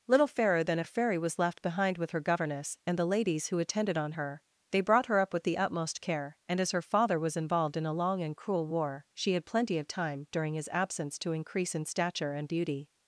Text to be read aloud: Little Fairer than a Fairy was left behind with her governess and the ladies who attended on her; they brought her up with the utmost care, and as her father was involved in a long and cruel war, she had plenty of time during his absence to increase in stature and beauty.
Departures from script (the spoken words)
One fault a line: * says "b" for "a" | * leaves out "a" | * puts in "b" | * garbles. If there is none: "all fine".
all fine